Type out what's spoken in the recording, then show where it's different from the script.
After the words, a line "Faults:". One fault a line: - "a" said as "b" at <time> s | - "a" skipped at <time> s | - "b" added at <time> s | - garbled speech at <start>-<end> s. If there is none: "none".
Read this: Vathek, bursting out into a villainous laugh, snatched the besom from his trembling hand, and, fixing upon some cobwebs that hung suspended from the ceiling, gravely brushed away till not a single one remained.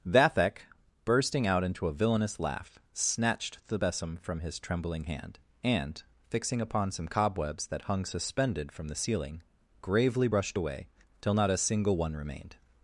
Vathek, bursting out into a villainous laugh, snatched the besom from his trembling hand, and, fixing upon some cobwebs that hung suspended from the ceiling, gravely brushed away till not a single one remained.
Faults:
none